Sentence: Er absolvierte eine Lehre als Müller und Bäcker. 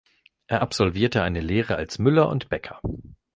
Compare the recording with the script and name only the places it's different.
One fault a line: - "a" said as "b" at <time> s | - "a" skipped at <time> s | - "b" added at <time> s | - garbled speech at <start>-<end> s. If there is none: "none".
none